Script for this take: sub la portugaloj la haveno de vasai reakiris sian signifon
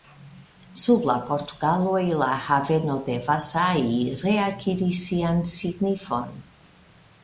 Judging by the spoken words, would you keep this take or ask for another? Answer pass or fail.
pass